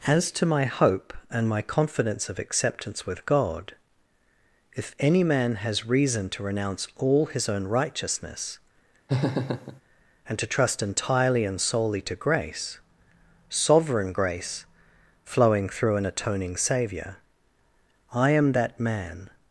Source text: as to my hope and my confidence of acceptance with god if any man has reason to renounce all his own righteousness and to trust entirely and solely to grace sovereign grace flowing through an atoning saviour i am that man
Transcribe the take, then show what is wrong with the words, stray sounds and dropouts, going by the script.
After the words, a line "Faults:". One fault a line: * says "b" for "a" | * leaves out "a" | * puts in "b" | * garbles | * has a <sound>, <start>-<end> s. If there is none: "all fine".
as to my hope and my confidence of acceptance with god if any man has reason to renounce all his own righteousness and to trust entirely and solely to grace sovereign grace flowing through an atoning saviour i am that man
Faults:
* has a laugh, 9.1-9.8 s